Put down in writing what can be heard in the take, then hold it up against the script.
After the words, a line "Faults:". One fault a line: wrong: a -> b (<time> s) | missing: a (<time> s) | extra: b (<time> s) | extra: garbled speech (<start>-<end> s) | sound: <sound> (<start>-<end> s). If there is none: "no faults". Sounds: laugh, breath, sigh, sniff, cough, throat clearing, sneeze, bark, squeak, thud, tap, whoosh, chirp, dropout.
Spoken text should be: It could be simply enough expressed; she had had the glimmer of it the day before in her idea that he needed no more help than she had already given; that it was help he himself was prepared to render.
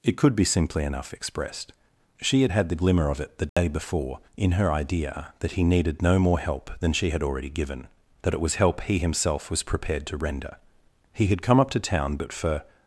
It could be simply enough expressed; she had had the glimmer of it the day before in her idea that he needed no more help than she had already given; that it was help he himself was prepared to render. He had come up to town but for
Faults:
sound: dropout (3.5-3.6 s)
extra: He had come up to town but for (11.1 s)